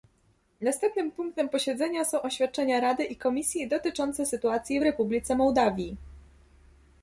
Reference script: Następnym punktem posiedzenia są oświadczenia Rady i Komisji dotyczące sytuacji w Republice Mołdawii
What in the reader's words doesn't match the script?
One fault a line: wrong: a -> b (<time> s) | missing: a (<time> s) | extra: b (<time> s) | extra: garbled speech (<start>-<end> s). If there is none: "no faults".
no faults